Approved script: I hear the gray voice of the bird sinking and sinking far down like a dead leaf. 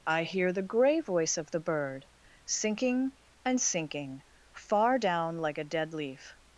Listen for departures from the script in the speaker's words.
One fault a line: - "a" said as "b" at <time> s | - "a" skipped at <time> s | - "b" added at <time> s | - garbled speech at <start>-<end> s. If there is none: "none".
none